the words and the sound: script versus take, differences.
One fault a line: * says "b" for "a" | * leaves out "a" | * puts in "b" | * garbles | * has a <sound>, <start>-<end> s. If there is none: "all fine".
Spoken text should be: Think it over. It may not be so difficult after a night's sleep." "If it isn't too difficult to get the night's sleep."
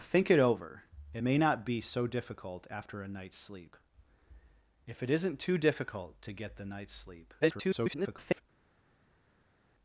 * garbles